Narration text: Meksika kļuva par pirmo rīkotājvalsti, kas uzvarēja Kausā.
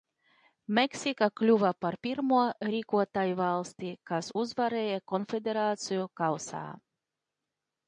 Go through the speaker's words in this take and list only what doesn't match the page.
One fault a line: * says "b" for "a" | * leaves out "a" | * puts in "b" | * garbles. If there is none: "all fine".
* puts in "Konfederāciju"